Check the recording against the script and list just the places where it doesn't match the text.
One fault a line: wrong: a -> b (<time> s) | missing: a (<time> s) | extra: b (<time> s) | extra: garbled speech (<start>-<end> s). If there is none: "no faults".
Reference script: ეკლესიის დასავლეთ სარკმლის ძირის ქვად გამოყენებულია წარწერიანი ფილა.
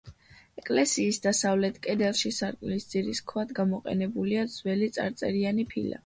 extra: კედელში (1.8 s)
extra: ძველი (4.5 s)